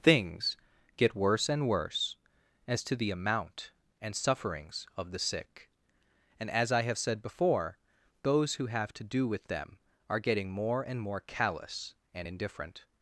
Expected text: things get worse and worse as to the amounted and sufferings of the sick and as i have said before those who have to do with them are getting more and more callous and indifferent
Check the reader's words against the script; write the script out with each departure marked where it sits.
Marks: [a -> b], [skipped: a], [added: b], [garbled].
things get worse and worse as to the [amounted -> amount] and sufferings of the sick and as i have said before those who have to do with them are getting more and more callous and indifferent